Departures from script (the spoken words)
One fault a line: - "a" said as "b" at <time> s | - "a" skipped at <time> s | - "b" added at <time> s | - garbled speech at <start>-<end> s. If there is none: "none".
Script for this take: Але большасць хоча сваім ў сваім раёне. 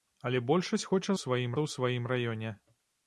none